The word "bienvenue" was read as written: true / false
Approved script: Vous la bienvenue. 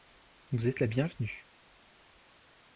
true